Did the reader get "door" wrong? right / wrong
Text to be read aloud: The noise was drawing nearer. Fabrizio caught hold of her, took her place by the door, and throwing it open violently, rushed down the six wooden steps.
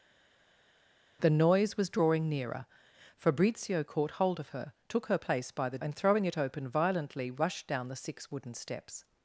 wrong